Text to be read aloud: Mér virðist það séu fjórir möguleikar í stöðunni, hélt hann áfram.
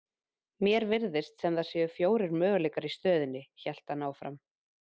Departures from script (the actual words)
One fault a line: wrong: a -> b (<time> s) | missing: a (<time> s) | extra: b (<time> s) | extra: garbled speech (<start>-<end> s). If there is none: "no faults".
extra: sem (1.4 s)